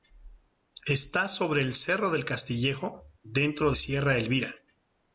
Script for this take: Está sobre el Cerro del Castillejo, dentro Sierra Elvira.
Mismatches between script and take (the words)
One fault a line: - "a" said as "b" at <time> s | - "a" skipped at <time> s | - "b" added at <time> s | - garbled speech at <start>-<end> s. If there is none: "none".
none